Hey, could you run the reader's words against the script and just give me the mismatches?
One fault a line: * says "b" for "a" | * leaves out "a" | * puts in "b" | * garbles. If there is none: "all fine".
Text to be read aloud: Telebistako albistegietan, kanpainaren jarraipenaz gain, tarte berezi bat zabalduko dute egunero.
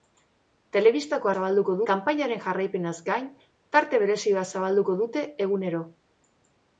* says "zabalduko" for "albistegietan"